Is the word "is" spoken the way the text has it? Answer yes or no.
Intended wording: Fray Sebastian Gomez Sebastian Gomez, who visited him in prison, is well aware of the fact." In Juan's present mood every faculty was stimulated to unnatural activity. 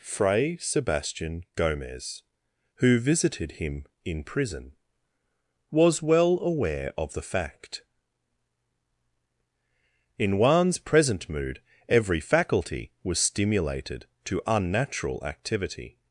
no